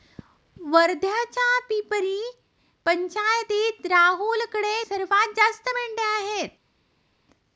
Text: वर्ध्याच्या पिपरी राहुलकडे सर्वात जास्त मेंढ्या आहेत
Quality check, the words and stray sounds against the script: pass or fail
fail